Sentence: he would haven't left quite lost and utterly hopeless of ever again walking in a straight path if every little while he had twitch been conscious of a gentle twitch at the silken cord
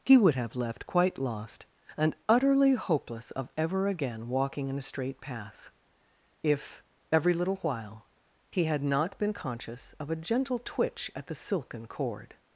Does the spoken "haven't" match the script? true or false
false